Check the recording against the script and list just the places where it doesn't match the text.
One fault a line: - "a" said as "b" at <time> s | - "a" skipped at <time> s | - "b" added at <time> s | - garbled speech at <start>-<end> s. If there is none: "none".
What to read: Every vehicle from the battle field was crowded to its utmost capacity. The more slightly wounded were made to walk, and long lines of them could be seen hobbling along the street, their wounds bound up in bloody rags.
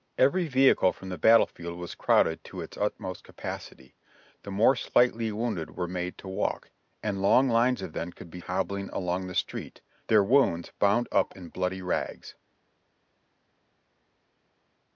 - "seen" skipped at 8.4 s